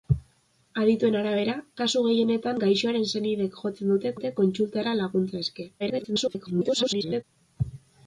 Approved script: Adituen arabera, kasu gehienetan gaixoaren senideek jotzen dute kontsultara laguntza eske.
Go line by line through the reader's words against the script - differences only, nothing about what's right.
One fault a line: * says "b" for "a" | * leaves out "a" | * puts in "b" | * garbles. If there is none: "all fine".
* puts in "dute"
* garbles